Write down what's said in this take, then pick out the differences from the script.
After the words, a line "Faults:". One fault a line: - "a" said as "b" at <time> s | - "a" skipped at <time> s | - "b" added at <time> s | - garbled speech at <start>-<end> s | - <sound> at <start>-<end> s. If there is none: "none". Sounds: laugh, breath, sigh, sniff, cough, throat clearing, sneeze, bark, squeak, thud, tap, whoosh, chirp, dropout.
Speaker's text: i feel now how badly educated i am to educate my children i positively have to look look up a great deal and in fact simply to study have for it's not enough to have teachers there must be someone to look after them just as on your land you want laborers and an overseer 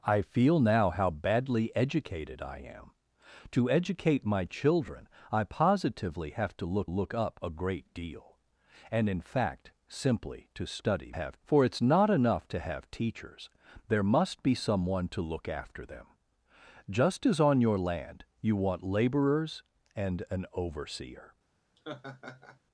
i feel now how badly educated i am to educate my children i positively have to look look up a great deal and in fact simply to study have for it's not enough to have teachers there must be someone to look after them just as on your land you want laborers and an overseer
Faults:
- laugh at 21.8-22.6 s